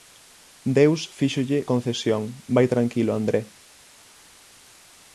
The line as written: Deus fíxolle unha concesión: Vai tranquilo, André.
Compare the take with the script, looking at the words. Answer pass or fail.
fail